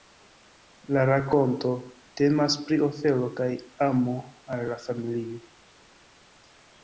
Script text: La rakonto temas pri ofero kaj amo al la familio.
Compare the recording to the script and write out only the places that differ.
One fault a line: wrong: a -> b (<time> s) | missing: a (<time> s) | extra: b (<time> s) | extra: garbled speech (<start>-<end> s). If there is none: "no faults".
no faults